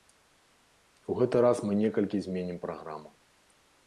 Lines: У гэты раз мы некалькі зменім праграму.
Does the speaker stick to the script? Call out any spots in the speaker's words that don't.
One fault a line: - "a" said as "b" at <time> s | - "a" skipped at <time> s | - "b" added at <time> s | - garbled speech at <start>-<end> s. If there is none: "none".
none